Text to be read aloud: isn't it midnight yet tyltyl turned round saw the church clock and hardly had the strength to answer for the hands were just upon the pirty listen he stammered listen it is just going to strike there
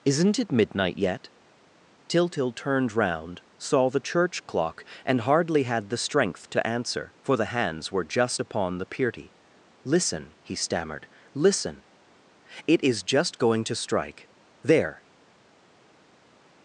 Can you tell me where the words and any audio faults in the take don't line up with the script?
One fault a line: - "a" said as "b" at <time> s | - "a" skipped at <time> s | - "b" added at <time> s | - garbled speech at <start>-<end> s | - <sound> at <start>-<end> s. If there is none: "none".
none